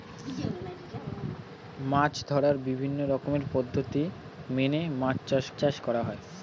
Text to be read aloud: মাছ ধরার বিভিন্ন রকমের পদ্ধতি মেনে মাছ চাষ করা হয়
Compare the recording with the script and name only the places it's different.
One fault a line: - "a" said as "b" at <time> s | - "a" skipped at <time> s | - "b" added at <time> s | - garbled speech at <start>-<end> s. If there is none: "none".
- "চাষ" added at 5.6 s